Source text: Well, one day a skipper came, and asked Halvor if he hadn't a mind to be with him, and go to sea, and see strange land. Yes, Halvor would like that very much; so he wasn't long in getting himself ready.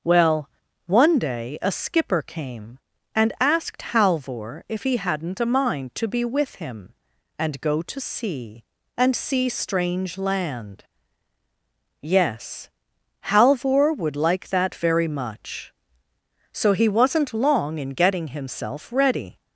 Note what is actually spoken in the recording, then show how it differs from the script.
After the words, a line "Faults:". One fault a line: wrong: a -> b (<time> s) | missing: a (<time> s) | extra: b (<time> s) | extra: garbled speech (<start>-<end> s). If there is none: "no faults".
Well, one day a skipper came, and asked Halvor if he hadn't a mind to be with him, and go to sea, and see strange land. Yes, Halvor would like that very much; so he wasn't long in getting himself ready.
Faults:
no faults